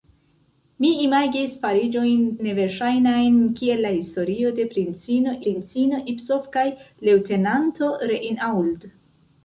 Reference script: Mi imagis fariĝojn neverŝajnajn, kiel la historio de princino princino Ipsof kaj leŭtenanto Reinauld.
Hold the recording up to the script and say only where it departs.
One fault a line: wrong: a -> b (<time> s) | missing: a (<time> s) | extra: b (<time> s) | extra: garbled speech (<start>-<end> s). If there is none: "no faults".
no faults